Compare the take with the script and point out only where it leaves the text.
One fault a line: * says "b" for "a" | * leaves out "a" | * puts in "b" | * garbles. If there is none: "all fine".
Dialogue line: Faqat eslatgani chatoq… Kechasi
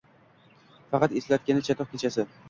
all fine